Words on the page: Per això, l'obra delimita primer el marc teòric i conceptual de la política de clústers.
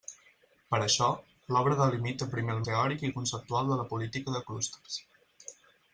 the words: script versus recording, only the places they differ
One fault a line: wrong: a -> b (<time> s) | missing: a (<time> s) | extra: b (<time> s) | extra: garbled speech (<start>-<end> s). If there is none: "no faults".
missing: marc (2.6 s)